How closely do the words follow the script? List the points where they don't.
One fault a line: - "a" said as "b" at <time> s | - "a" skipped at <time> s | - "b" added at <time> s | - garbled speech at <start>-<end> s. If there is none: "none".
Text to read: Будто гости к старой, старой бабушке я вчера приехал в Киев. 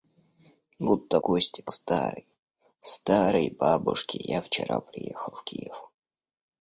none